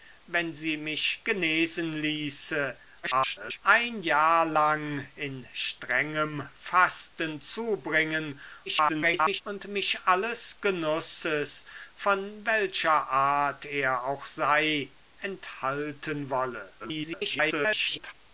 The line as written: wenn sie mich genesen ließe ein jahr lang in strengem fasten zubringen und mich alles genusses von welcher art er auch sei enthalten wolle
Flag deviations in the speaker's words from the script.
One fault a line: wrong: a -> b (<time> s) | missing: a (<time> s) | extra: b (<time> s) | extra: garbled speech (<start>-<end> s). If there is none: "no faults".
extra: garbled speech (3.0-3.6 s)
extra: garbled speech (8.7-9.4 s)
extra: garbled speech (16.8-18.1 s)